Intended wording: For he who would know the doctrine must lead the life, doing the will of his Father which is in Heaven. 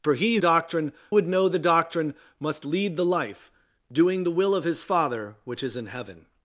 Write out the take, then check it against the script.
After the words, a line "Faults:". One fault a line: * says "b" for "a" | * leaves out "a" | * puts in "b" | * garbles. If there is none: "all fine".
For he doctrine would know the doctrine must lead the life, doing the will of his Father which is in Heaven.
Faults:
* says "doctrine" for "who"